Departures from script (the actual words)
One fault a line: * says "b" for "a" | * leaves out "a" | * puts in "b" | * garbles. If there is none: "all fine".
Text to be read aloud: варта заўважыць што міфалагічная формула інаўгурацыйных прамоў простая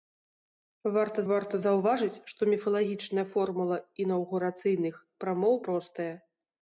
* puts in "варта"